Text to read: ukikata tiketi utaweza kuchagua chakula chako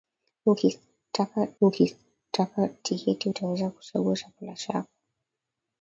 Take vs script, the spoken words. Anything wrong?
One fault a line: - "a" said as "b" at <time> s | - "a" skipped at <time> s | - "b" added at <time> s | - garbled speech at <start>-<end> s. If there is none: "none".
- "ukikata" added at 1.6 s